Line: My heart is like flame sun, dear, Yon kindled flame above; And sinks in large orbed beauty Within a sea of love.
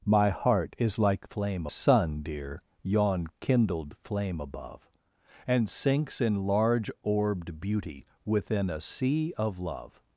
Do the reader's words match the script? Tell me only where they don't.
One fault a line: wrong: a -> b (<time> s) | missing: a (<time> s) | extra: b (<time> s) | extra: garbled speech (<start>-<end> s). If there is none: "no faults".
no faults